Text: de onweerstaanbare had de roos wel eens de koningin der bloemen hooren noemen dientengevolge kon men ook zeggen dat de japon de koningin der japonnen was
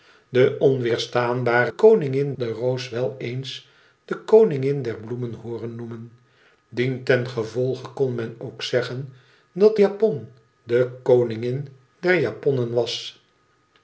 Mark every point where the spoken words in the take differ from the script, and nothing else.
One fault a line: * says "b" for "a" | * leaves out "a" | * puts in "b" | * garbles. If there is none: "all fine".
* says "koningin" for "had"
* leaves out "de"